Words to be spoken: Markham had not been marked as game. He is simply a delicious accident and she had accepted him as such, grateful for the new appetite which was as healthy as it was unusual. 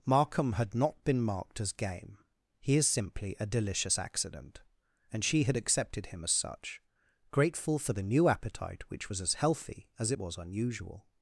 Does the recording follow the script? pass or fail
pass